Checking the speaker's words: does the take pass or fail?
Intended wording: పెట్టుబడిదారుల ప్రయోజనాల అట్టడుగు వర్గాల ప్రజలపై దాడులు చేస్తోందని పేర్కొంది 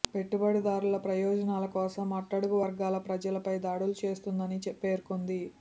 fail